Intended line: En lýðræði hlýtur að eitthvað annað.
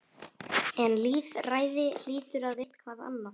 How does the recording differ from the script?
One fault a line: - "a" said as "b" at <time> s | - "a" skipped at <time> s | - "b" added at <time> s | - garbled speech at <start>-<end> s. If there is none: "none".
none